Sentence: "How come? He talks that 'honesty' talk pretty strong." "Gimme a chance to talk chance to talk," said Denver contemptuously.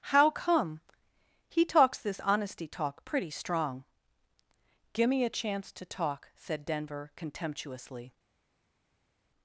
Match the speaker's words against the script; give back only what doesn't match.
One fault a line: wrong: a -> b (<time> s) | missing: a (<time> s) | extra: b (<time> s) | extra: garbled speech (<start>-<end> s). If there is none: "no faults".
wrong: that -> this (2.0 s)
missing: chance to talk (6.3 s)